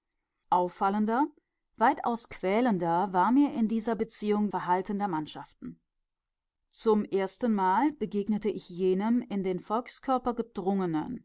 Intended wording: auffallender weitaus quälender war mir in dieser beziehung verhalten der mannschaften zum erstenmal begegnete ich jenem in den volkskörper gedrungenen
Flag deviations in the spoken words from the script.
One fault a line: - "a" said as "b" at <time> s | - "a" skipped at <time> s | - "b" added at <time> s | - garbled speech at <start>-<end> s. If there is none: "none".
none